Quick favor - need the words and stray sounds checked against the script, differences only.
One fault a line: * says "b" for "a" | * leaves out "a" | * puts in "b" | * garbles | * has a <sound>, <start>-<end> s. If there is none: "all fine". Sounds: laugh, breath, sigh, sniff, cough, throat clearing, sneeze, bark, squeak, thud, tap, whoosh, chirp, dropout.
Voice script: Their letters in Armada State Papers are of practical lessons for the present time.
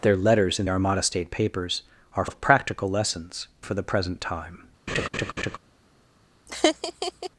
* has a laugh, 4.9-5.6 s
* has a laugh, 6.5-7.3 s